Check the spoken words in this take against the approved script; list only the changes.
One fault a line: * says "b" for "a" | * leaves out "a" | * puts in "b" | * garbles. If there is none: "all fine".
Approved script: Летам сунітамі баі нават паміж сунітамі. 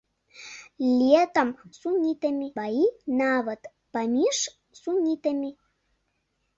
all fine